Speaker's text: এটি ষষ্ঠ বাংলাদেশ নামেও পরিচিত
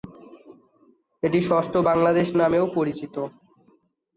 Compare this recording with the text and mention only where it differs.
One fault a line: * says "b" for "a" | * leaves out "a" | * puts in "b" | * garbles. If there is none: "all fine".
all fine